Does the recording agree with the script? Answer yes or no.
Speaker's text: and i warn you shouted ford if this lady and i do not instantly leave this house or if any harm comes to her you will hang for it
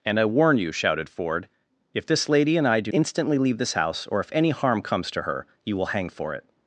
no